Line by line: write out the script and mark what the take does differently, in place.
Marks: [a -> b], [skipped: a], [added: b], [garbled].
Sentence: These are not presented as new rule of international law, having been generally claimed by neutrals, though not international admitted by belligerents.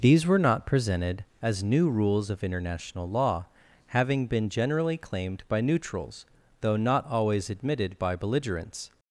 These [are -> were] not presented as new [rule -> rules] of international law, having been generally claimed by neutrals, though not [international -> always] admitted by belligerents.